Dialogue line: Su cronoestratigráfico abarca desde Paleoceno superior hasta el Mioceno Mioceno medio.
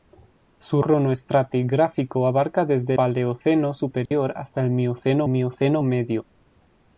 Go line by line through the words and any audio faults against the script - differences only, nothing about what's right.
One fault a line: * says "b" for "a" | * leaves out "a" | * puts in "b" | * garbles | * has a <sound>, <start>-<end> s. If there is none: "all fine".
* has a dropout, 4.1-4.1 s